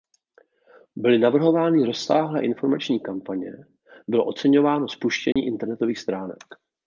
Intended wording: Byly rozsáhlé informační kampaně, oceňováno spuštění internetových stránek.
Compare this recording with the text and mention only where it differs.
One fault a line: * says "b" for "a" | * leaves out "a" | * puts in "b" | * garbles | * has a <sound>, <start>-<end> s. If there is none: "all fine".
* puts in "navrhovány"
* puts in "bylo"
* has a dropout, 5.3-5.4 s